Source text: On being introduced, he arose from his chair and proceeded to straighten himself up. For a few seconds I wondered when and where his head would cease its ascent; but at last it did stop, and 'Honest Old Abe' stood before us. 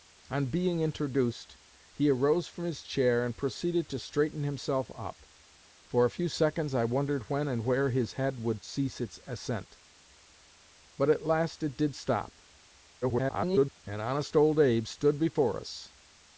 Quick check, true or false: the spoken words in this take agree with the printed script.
false